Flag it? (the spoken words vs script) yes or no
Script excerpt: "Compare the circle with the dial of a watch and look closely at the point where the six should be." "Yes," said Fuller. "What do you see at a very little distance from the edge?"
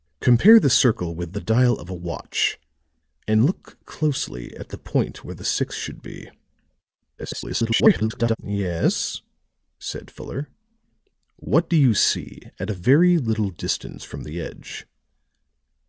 yes